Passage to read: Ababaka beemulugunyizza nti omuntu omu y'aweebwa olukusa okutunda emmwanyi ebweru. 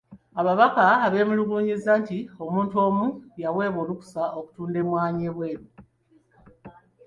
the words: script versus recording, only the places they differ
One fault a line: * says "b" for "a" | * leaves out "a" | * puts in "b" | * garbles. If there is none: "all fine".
all fine